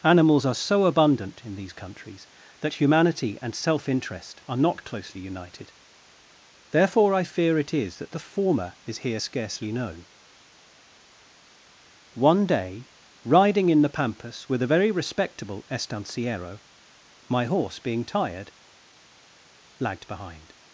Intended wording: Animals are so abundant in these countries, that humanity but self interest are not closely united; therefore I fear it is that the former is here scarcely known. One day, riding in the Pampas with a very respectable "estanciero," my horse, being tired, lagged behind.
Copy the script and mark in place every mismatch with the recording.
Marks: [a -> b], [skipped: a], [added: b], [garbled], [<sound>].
Animals are so abundant in these countries, that humanity [but -> and] self interest are not closely united; therefore I fear it is that the former is here scarcely known. One day, riding in the Pampas with a very respectable "estanciero," my horse, being tired, lagged behind.